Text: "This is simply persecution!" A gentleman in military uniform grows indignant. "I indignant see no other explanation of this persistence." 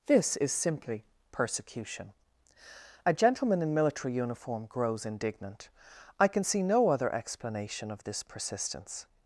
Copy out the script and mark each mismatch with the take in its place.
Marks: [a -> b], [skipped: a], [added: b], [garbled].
"This is simply persecution!" A gentleman in military uniform grows indignant. "I [indignant -> can] see no other explanation of this persistence."